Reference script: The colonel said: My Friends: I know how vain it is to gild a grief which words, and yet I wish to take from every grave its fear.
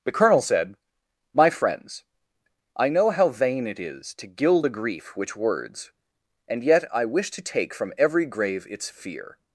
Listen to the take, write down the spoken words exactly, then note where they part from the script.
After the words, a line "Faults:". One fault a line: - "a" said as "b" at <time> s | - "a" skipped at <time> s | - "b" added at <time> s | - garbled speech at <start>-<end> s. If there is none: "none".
The colonel said: My Friends: I know how vain it is to gild a grief which words, and yet I wish to take from every grave its fear.
Faults:
none